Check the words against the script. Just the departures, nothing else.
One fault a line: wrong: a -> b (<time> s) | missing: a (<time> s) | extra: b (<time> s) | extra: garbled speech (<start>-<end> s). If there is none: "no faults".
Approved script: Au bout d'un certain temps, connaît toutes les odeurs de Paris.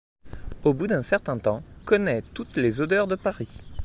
no faults